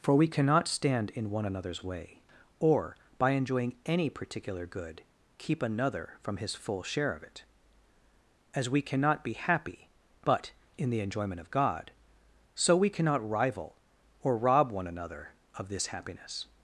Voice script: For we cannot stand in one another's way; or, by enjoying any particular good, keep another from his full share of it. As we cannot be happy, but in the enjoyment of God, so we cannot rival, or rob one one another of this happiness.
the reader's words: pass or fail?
fail